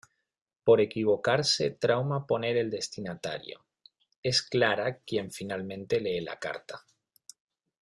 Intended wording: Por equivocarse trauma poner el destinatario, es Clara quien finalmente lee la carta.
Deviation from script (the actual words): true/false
false